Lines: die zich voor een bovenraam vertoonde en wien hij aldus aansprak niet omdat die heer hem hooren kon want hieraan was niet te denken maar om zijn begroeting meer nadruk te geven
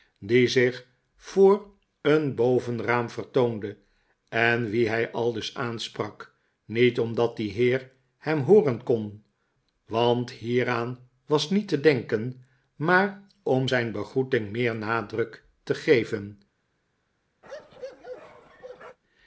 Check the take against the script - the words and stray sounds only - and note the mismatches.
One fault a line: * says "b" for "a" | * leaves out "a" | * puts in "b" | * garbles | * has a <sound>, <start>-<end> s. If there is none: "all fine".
* has a bark, 17.4-19.0 s